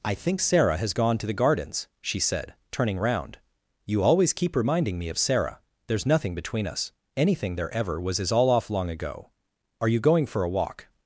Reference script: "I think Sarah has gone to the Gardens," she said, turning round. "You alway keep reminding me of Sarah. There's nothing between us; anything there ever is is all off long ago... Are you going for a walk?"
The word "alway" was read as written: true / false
false